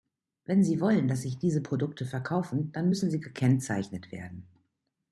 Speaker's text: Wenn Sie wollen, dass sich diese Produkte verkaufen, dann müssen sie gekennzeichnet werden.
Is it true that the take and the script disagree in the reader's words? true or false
false